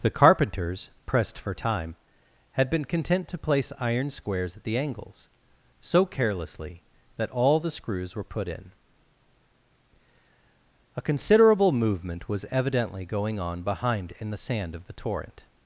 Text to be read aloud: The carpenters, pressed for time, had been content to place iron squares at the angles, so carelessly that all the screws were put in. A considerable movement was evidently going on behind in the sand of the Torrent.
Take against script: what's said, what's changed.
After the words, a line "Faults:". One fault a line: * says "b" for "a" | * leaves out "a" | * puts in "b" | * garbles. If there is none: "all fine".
The carpenters, pressed for time, had been content to place iron squares at the angles, so carelessly that all the screws were put in. A considerable movement was evidently going on behind in the sand of the Torrent.
Faults:
all fine